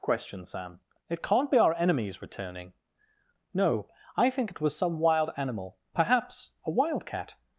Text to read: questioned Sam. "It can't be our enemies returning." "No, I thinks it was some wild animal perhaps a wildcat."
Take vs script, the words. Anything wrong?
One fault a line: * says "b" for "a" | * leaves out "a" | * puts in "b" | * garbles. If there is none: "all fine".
* says "think" for "thinks"